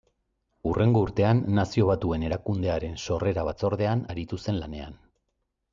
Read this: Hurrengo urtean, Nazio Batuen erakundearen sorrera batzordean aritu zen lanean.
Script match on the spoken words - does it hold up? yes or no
yes